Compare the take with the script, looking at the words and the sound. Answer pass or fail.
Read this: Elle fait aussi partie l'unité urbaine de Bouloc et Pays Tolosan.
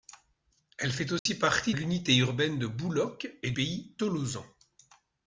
fail